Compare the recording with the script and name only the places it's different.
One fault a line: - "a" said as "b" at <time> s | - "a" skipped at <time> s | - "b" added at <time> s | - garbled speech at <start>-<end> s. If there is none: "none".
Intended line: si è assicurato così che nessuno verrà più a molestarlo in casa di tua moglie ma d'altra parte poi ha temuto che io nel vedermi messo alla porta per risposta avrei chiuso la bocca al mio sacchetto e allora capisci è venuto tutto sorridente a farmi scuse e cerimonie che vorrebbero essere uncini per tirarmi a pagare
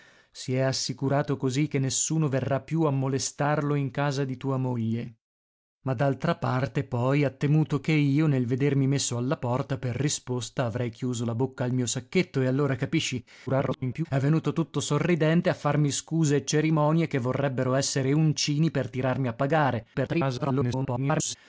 - garbled speech at 13.5-14.1 s
- garbled speech at 19.9-21.4 s